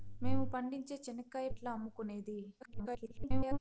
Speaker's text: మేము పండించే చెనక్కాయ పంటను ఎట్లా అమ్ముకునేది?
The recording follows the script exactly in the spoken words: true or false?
false